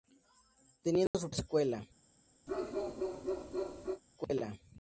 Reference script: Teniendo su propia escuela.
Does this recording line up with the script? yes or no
no